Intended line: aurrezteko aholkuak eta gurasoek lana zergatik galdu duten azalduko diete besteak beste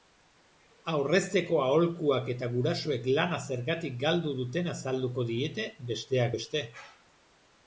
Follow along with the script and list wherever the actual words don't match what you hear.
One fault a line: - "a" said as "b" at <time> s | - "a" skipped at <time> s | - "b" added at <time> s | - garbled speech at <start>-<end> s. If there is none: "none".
none